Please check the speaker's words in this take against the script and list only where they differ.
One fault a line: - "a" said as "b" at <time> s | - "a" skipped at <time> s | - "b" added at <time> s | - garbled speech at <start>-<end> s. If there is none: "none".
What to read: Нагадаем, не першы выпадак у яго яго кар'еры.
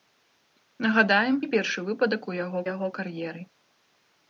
none